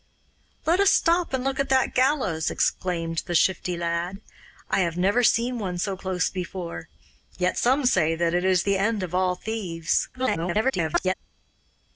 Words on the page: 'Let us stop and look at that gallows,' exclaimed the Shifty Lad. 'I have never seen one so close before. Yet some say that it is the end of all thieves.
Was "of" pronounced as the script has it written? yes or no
yes